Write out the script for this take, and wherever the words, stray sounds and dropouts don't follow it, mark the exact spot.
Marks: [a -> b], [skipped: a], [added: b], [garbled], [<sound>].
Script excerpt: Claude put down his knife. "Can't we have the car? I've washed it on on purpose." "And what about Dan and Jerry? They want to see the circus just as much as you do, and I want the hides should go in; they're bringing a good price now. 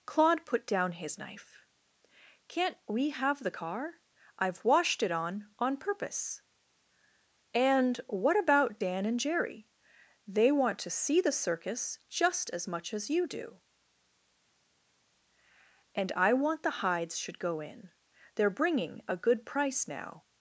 Claude put down his knife. "Can't we have the car? I've washed it on on purpose." "And what about Dan and Jerry? They want to see the circus just as much as you do, and I want the hides should go in; they're bringing a good price now.